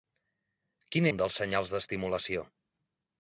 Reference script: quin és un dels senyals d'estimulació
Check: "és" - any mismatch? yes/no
yes